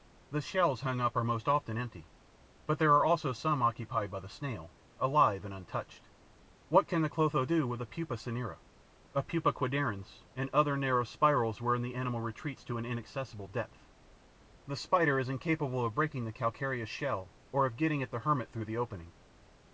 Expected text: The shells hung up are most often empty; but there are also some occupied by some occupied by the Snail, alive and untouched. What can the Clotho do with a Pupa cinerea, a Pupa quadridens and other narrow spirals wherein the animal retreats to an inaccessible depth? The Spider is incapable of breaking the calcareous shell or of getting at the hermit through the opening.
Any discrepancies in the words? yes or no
yes